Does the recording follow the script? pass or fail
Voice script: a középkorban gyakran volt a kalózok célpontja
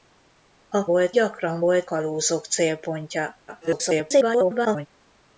fail